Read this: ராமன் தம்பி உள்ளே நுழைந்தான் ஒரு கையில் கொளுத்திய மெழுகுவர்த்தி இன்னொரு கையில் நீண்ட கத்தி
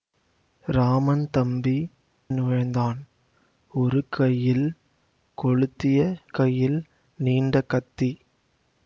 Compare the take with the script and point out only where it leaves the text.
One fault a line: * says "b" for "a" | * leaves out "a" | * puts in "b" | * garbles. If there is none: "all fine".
* leaves out "உள்ளே"
* leaves out "மெழுகுவர்த்தி இன்னொரு"